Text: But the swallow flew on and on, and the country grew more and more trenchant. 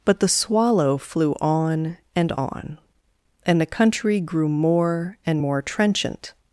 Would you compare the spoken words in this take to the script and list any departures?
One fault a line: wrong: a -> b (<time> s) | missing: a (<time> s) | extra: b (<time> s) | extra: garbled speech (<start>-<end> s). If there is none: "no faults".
no faults